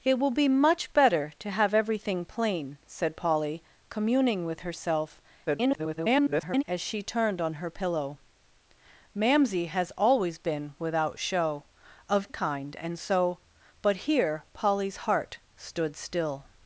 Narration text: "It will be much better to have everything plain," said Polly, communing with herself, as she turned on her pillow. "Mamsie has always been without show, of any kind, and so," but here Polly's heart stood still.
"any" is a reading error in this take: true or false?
true